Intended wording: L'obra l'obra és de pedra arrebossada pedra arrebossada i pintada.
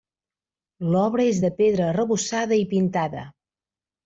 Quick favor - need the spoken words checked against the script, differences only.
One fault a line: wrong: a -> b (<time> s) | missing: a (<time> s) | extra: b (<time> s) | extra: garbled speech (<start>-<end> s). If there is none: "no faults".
missing: l'obra (1.3 s)
missing: pedra arrebossada (2.6 s)